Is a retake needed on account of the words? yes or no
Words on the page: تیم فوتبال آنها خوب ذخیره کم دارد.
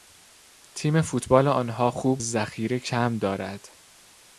no